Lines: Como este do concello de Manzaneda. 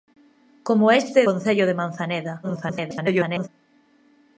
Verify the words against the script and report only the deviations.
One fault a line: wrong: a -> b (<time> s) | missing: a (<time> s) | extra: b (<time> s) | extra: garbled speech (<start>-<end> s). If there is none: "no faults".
missing: do (1.2 s)
extra: garbled speech (2.4-3.5 s)